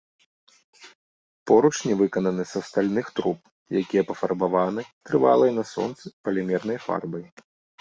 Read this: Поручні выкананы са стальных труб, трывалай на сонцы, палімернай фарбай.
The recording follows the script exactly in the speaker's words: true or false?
false